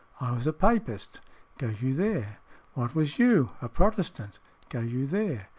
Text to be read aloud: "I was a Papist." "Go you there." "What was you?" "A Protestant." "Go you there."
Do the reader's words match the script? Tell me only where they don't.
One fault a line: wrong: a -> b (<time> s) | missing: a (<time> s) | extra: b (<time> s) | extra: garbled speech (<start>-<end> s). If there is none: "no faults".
no faults